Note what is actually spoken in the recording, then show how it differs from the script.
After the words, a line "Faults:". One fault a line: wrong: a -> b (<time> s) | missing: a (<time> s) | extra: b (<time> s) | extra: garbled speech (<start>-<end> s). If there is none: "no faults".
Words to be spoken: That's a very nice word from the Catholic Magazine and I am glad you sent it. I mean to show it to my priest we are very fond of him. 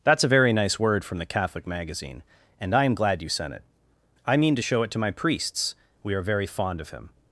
That's a very nice word from the Catholic Magazine and I am glad you sent it. I mean to show it to my priests we are very fond of him.
Faults:
wrong: priest -> priests (5.1 s)